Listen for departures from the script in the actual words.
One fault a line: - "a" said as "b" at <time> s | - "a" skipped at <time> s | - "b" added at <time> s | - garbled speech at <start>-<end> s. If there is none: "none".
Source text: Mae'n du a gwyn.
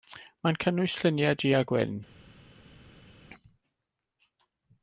- "cynnwys lluniau" added at 0.6 s